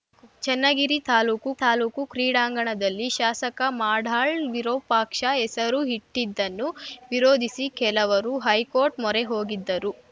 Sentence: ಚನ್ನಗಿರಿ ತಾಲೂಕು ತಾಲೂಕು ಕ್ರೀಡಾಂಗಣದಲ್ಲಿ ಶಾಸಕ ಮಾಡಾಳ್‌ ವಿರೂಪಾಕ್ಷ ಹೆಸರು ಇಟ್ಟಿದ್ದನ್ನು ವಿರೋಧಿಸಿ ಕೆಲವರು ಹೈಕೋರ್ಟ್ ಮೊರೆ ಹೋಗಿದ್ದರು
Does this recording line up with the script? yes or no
yes